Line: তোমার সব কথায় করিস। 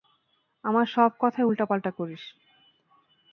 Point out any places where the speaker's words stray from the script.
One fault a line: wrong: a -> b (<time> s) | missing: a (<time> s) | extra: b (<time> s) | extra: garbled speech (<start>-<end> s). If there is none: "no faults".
wrong: তোমার -> আমার (0.6 s)
extra: উল্টাপাল্টা (1.5 s)